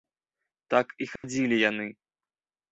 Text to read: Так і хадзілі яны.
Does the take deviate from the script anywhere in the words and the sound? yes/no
yes